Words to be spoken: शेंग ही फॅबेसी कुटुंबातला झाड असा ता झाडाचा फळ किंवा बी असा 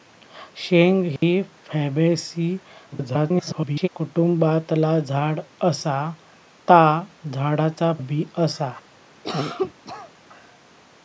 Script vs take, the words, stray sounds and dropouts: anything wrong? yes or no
yes